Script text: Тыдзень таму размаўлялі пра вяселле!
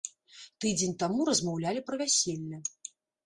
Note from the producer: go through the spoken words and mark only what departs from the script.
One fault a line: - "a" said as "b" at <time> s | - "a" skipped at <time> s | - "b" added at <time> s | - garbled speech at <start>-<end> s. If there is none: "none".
none